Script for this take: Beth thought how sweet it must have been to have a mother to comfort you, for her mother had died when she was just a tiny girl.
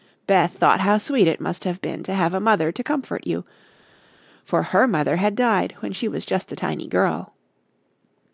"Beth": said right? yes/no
yes